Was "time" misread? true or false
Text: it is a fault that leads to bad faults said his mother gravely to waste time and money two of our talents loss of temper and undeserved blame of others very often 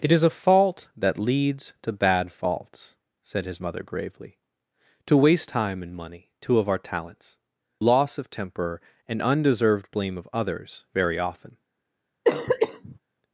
false